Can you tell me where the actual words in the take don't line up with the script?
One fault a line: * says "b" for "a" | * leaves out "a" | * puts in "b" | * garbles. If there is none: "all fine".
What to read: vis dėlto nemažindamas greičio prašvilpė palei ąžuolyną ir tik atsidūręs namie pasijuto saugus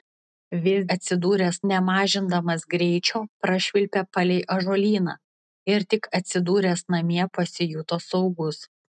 * says "atsidūręs" for "dėlto"